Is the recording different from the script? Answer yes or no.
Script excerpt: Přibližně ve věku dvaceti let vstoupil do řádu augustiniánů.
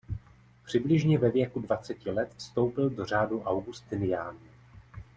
no